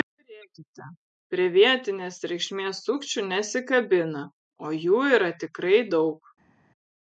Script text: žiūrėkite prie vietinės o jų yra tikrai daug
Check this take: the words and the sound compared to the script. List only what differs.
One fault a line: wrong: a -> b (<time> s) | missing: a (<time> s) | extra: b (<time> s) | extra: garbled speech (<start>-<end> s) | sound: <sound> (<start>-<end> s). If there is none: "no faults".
extra: reikšmės sukčių nesikabina (2.3 s)